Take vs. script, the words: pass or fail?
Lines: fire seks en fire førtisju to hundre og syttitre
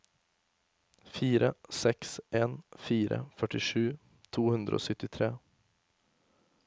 pass